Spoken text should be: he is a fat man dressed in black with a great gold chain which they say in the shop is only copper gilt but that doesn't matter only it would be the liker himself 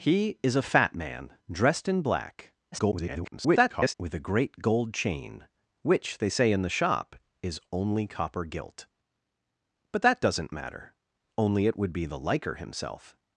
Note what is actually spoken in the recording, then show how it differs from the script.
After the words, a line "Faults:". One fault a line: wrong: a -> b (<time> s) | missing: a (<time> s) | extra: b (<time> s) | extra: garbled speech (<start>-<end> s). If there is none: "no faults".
he is a fat man dressed in black [garbled] with a great gold chain which they say in the shop is only copper gilt but that doesn't matter only it would be the liker himself
Faults:
extra: garbled speech (2.7-3.9 s)